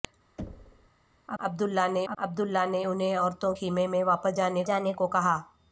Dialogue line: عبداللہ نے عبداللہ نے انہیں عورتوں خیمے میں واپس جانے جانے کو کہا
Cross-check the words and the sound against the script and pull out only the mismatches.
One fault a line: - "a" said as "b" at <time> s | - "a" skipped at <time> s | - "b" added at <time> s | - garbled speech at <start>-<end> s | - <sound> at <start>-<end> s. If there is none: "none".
- thud at 0.4-0.9 s